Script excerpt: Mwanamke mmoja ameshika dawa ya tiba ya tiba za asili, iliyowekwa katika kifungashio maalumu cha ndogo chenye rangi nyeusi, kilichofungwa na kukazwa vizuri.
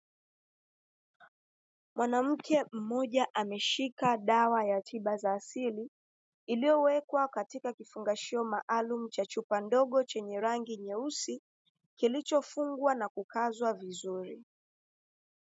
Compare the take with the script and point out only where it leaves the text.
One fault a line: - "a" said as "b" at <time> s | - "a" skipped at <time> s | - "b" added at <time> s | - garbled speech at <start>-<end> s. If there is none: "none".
- "ya tiba" skipped at 5.2 s
- "chupa" added at 9.2 s